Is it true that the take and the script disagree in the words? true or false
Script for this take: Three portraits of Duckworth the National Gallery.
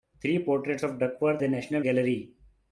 false